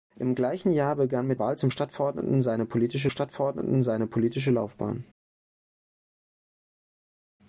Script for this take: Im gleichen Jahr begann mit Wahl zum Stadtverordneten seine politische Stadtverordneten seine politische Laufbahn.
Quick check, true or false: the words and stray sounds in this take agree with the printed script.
true